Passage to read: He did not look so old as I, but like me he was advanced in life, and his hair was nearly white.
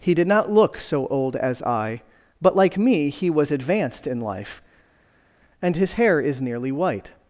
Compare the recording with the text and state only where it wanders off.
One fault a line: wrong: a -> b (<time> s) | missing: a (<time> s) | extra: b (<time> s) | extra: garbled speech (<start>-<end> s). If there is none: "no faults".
wrong: was -> is (6.2 s)